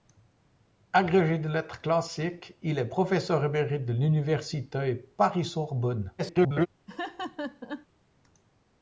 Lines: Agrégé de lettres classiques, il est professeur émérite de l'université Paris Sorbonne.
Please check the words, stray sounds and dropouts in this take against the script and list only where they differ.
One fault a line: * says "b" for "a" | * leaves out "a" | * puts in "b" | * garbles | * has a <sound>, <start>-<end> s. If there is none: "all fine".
* garbles
* has a laugh, 6.9-7.9 s